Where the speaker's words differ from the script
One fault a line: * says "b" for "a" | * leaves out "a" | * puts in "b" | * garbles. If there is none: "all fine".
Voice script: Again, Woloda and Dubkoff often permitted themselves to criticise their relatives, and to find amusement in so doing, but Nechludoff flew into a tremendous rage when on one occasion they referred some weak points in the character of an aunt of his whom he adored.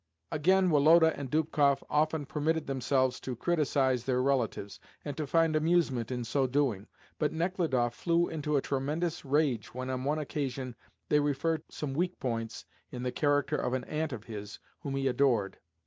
all fine